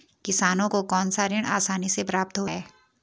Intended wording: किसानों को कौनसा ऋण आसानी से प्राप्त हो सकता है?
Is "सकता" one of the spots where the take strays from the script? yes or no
yes